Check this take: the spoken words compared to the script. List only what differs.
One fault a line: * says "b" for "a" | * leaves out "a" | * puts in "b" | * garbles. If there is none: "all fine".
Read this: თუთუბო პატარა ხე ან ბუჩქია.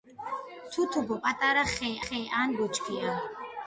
* puts in "ხე"